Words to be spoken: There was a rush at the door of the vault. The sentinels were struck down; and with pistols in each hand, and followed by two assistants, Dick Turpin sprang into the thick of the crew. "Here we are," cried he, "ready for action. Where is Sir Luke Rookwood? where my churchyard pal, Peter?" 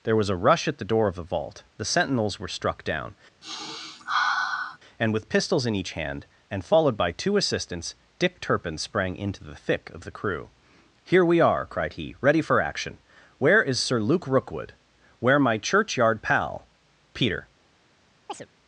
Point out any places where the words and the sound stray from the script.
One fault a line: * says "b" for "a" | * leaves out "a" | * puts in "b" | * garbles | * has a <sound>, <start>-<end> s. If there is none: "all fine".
* has a sniff, 3.4-4.8 s
* has a chirp, 18.3-18.5 s